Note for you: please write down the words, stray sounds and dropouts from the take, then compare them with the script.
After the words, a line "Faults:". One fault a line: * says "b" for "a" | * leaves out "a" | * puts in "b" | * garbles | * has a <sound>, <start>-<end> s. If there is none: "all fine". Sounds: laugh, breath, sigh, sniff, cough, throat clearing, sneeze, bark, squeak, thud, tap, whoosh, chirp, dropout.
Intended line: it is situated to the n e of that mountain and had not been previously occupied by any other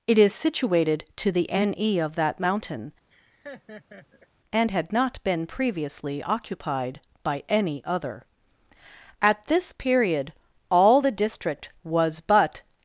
it is situated to the n e of that mountain and had not been previously occupied by any other at this period all the district was but
Faults:
* has a laugh, 3.1-4.3 s
* puts in "at this period all the district was but"